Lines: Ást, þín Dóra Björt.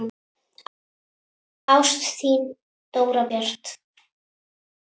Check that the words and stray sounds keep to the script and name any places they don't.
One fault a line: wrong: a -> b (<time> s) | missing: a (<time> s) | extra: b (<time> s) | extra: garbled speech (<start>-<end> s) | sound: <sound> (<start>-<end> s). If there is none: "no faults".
no faults